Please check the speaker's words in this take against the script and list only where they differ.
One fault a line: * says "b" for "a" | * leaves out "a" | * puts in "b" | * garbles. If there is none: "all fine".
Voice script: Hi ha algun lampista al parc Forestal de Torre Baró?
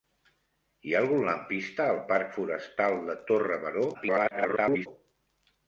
* garbles